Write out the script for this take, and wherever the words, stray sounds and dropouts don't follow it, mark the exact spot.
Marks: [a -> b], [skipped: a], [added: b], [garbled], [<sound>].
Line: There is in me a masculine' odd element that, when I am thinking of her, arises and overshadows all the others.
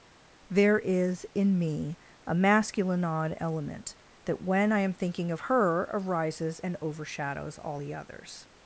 There is in me a masculine' odd element that, when I am thinking of her, arises and overshadows all the others.